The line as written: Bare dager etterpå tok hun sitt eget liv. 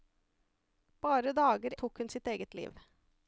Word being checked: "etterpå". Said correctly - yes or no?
no